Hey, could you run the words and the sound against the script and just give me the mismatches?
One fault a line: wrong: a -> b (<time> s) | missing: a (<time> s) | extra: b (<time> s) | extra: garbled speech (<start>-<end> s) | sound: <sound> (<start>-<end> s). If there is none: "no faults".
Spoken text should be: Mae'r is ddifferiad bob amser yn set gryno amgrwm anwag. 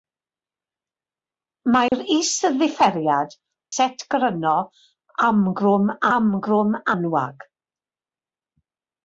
sound: dropout (1.9-1.9 s)
missing: bob amser yn (3.4 s)
extra: amgrwm (6.2 s)